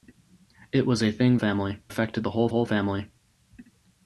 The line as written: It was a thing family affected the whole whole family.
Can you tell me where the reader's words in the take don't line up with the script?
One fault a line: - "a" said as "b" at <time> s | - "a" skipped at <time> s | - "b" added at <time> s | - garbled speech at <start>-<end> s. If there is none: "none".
none